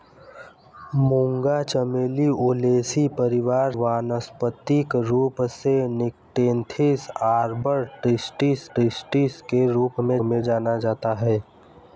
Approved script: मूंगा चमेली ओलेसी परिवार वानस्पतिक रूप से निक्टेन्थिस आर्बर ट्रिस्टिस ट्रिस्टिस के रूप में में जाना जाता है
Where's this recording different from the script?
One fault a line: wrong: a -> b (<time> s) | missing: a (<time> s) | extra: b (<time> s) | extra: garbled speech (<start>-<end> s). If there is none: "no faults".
no faults